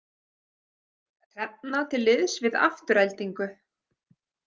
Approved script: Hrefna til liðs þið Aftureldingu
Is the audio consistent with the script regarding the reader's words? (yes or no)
no